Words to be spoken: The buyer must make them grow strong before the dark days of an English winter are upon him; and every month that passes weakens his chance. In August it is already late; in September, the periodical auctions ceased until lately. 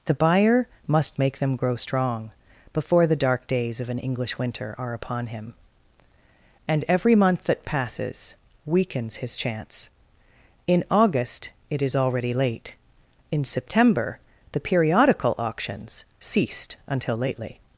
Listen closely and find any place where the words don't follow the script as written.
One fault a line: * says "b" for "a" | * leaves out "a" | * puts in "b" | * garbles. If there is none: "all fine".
all fine